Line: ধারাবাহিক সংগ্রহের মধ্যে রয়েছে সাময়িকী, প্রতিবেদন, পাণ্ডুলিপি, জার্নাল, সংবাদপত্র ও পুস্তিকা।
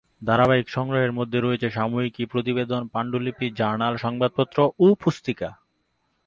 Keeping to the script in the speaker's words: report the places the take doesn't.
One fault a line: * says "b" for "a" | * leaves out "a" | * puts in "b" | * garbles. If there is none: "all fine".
all fine